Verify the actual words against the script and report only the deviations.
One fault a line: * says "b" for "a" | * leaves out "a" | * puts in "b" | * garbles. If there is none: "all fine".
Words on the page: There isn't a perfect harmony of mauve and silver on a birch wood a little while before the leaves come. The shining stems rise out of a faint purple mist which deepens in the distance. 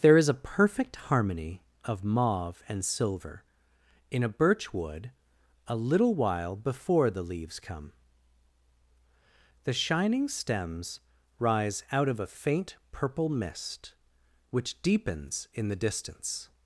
* says "is" for "isn't"
* says "in" for "on"